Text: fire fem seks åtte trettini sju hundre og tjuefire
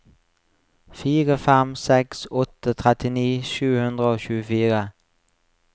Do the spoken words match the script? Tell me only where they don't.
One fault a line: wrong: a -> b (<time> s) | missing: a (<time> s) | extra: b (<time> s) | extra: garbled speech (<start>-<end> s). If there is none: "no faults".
no faults